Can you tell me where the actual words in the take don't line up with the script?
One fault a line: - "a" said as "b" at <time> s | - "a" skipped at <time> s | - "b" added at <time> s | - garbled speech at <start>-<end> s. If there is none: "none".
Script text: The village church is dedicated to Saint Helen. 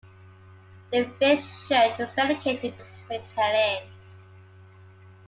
- "to" skipped at 2.8 s